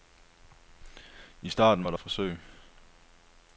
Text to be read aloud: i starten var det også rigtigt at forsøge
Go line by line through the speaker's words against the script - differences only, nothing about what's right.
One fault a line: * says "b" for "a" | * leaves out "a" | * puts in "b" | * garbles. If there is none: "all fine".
* leaves out "også rigtigt"